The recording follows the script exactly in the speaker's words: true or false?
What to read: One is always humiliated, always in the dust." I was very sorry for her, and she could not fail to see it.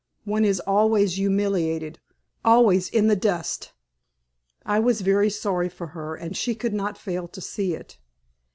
true